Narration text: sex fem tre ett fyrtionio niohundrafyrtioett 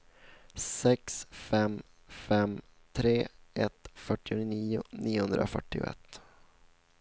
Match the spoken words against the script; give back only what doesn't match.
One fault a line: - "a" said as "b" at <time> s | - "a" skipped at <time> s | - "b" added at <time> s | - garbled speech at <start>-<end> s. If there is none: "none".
- "fem" added at 2.1 s